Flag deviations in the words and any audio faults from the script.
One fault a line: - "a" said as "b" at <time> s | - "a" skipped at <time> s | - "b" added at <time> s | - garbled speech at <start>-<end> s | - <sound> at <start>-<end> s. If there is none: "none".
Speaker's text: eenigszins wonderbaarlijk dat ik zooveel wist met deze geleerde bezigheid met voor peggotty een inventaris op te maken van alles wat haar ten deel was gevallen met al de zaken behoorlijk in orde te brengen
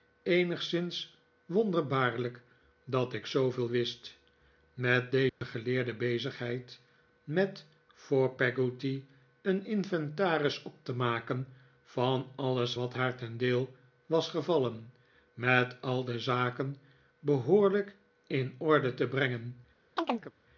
- dropout at 5.3-5.4 s
- chirp at 20.0-20.3 s